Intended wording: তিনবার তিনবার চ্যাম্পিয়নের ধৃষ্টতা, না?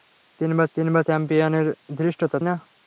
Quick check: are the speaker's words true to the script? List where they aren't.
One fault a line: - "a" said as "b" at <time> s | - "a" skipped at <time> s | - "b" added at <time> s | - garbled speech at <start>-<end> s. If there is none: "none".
none